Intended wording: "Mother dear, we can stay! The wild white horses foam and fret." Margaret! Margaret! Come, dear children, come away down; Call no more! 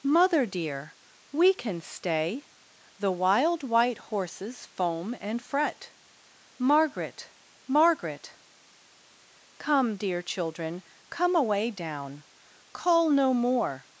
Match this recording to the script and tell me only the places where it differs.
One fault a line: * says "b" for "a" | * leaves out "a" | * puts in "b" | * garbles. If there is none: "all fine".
all fine